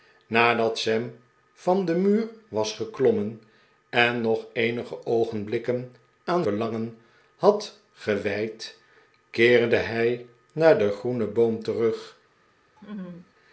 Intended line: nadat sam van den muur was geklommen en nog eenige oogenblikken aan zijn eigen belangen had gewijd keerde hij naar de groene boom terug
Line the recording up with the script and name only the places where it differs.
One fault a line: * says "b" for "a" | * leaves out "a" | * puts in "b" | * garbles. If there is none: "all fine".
* leaves out "zijn eigen"